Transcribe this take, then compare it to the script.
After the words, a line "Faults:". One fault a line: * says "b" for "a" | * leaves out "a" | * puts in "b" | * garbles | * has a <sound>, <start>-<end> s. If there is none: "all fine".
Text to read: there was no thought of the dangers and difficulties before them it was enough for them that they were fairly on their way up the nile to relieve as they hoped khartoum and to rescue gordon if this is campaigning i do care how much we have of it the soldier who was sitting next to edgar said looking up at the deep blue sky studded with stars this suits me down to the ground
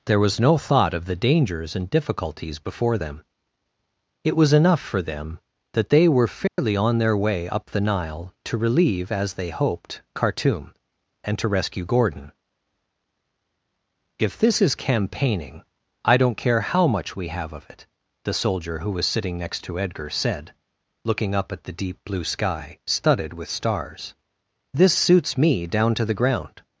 there was no thought of the dangers and difficulties before them it was enough for them that they were fairly on their way up the nile to relieve as they hoped khartoum and to rescue gordon if this is campaigning i don't care how much we have of it the soldier who was sitting next to edgar said looking up at the deep blue sky studded with stars this suits me down to the ground
Faults:
* has a dropout, 6.5-6.6 s
* says "don't" for "do"